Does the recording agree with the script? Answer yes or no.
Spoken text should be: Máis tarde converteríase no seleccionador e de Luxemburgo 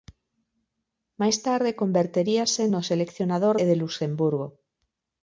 yes